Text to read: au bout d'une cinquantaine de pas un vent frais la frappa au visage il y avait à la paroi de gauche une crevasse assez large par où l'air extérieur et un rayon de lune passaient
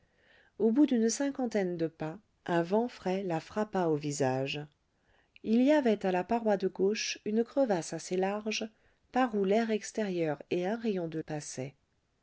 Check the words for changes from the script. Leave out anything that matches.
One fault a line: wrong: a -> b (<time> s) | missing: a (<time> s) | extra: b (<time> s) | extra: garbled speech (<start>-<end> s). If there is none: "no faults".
missing: lune (11.2 s)